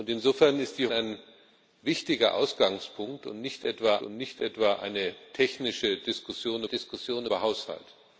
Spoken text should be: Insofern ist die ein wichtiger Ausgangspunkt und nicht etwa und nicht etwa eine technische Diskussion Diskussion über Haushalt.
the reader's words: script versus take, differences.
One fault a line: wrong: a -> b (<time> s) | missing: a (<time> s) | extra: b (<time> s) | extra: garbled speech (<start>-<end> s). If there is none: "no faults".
no faults